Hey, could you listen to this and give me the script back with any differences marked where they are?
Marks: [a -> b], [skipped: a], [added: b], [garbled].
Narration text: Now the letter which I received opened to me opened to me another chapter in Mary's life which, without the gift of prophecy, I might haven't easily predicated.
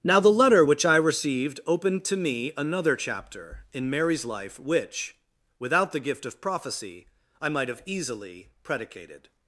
Now the letter which I received opened to me [skipped: opened to me] another chapter in Mary's life which, without the gift of prophecy, I might [haven't -> have] easily predicated.